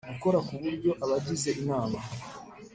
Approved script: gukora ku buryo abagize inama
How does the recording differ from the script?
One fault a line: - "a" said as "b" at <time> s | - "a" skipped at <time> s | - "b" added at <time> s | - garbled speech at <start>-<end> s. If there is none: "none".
none